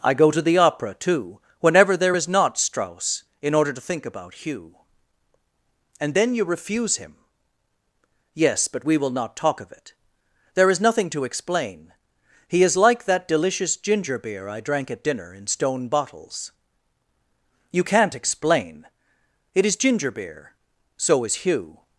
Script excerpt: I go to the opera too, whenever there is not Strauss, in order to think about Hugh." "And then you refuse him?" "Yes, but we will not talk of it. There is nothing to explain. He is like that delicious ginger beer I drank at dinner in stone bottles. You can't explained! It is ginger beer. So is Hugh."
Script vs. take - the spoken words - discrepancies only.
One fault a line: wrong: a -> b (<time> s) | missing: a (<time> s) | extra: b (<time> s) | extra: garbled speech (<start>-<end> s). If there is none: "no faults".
wrong: explained -> explain (18.1 s)